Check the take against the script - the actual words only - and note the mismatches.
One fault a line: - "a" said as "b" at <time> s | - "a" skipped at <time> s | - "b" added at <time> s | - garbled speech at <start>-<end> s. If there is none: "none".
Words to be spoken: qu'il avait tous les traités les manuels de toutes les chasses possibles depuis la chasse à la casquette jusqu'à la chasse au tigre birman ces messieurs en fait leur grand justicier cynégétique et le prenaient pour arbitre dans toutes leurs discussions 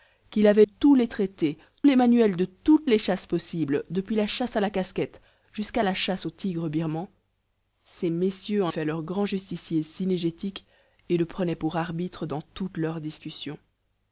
none